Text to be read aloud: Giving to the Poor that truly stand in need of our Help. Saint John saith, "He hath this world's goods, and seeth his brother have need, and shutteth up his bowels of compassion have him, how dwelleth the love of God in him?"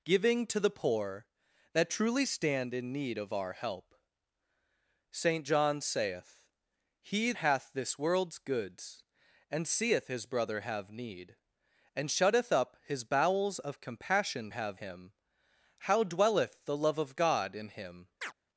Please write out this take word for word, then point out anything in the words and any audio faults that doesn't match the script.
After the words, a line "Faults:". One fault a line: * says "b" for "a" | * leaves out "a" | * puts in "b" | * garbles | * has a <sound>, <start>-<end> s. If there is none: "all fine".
Giving to the Poor that truly stand in need of our Help. Saint John saith, "He hath this world's goods, and seeth his brother have need, and shutteth up his bowels of compassion have him, how dwelleth the love of God in him?"
Faults:
* has a chirp, 18.2-18.3 s